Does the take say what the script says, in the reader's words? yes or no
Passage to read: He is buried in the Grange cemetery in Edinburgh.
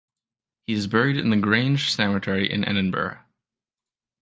yes